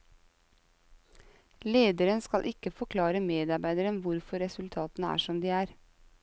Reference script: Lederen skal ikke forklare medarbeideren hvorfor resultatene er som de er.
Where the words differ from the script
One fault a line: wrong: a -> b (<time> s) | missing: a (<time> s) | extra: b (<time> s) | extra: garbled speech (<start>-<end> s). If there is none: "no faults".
no faults